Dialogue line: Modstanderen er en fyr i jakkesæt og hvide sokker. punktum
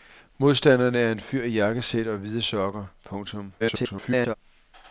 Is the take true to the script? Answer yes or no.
no